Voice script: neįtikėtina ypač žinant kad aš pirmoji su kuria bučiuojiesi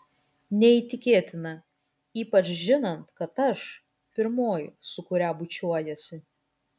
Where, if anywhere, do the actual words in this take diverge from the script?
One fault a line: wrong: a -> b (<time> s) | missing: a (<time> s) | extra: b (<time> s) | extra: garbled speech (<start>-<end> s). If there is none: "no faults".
no faults